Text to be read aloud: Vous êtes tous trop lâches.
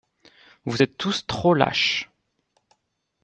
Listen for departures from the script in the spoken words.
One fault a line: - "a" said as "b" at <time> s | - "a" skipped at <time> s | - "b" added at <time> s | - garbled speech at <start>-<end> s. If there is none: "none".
none